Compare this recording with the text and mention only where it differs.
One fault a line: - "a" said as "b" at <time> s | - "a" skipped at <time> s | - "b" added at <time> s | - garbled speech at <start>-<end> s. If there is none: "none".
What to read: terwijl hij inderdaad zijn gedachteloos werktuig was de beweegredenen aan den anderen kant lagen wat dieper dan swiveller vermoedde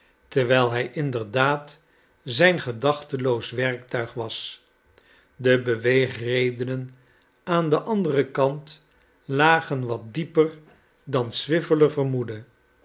none